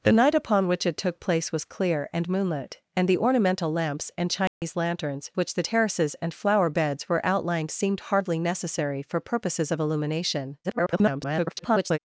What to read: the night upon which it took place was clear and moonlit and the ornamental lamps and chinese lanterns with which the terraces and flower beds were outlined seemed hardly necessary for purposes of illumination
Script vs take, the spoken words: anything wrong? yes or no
yes